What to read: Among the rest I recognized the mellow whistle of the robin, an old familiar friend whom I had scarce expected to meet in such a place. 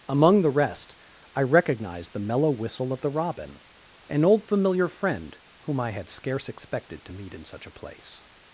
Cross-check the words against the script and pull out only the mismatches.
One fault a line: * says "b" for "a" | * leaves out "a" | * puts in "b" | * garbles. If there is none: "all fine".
all fine